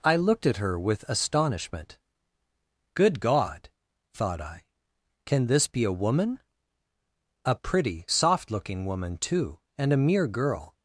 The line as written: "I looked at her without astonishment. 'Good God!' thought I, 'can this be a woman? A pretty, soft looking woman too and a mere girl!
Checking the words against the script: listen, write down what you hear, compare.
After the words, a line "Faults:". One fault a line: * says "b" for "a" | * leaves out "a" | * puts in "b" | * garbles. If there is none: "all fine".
"I looked at her with astonishment. 'Good God!' thought I, 'can this be a woman? A pretty, soft looking woman too and a mere girl!
Faults:
* says "with" for "without"